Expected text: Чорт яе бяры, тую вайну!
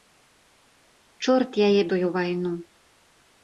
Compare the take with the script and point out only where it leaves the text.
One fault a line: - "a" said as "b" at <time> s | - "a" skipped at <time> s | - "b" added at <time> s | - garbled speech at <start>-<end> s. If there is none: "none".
- "бяры" skipped at 1.8 s